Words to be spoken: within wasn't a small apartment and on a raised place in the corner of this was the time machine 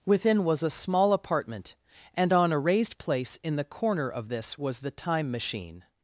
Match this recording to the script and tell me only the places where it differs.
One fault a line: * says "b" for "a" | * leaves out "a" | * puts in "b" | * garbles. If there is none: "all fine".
* says "was" for "wasn't"